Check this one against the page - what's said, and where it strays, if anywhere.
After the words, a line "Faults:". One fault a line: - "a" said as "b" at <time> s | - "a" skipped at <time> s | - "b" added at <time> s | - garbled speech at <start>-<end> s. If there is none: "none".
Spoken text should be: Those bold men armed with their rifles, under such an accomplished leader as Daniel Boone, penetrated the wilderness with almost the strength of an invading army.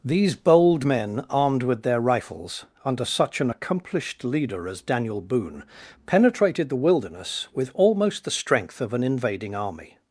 These bold men armed with their rifles, under such an accomplished leader as Daniel Boone, penetrated the wilderness with almost the strength of an invading army.
Faults:
- "Those" said as "These" at 0.0 s